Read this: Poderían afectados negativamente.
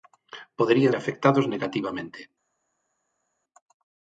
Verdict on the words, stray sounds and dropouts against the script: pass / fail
pass